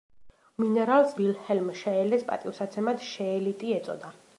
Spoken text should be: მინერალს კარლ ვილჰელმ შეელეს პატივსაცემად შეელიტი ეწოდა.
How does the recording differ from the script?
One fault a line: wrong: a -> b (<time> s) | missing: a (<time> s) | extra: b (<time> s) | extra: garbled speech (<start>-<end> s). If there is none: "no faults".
missing: კარლ (1.1 s)